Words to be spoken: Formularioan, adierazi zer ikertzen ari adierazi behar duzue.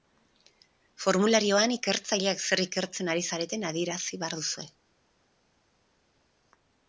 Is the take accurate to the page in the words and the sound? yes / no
no